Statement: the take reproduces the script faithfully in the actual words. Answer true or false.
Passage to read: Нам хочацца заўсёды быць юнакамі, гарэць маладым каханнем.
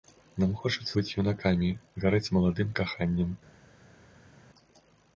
false